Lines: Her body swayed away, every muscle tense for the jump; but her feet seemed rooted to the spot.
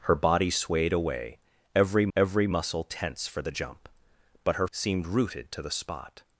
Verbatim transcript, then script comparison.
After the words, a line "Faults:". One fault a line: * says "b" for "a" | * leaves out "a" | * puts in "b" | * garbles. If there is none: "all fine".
Her body swayed away, every every muscle tense for the jump; but her seemed rooted to the spot.
Faults:
* puts in "every"
* leaves out "feet"